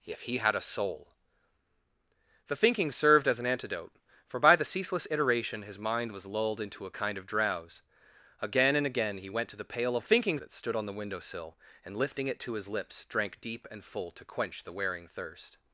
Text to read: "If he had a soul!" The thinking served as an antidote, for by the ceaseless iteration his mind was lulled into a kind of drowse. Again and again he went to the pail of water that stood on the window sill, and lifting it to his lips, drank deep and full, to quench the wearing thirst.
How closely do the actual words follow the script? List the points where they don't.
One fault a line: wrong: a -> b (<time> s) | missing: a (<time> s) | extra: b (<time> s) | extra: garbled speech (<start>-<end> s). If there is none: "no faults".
wrong: water -> thinking (10.0 s)